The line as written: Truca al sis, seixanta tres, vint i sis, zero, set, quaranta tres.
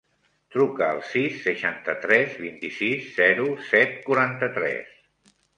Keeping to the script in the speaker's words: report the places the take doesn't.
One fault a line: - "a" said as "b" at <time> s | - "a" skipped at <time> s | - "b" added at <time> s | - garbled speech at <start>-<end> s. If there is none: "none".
none